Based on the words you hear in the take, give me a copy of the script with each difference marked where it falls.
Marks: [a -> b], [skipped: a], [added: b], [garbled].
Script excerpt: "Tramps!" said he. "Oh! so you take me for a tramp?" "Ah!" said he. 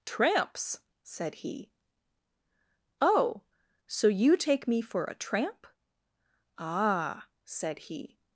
"Tramps!" said he. "Oh! so you take me for a tramp?" "Ah!" said he.